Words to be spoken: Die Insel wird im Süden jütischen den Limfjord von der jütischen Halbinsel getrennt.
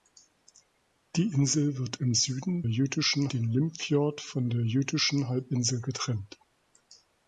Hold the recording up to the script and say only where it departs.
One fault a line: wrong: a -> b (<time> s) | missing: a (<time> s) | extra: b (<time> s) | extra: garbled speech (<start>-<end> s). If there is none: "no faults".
no faults